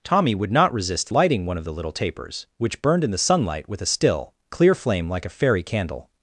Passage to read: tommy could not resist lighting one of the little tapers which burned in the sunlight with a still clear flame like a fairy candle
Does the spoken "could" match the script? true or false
false